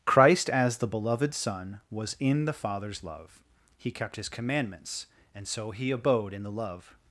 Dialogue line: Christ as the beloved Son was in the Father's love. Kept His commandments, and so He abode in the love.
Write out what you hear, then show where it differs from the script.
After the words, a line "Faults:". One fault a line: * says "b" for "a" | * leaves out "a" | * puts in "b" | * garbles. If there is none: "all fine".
Christ as the beloved Son was in the Father's love. He kept His commandments, and so He abode in the love.
Faults:
* puts in "He"